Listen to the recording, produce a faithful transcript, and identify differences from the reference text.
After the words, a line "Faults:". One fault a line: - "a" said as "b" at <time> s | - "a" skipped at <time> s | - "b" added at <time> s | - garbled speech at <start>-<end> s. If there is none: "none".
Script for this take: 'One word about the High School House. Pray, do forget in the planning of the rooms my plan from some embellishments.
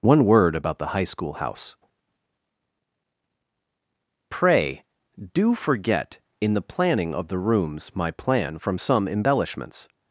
'One word about the High School House. Pray, do forget in the planning of the rooms my plan from some embellishments.
Faults:
none